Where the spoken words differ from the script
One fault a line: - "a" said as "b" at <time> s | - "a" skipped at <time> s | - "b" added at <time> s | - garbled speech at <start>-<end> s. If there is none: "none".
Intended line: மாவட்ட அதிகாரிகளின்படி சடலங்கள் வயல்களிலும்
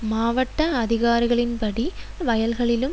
- "சடலங்கள்" skipped at 1.8 s